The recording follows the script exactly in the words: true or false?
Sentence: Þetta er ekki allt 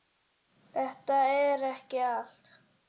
true